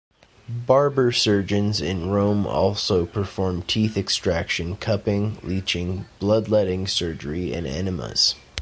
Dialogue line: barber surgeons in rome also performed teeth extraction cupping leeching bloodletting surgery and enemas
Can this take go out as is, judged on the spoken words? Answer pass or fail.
pass